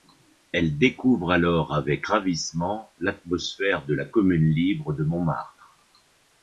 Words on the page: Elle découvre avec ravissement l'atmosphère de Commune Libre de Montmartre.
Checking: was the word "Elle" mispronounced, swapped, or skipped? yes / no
no